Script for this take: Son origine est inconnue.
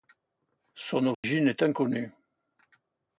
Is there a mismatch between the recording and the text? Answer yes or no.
no